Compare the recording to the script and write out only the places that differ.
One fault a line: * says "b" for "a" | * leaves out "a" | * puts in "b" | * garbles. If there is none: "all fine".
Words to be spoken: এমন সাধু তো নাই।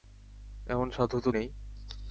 all fine